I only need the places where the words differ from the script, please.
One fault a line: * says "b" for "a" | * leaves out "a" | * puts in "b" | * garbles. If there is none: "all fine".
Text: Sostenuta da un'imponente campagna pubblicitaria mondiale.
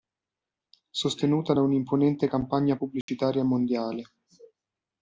all fine